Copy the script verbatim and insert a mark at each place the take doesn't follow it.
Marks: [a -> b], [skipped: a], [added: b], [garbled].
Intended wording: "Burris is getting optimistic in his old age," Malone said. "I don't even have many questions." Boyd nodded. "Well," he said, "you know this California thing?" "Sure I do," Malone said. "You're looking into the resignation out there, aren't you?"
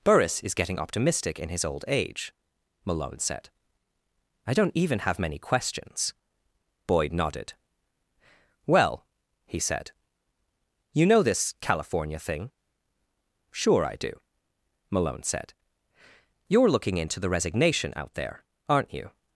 "Burris is getting optimistic in his old age," Malone said. "I don't even have many questions." Boyd nodded. "Well," he said, "you know this California thing?" "Sure I do," Malone said. "You're looking into the resignation out there, aren't you?"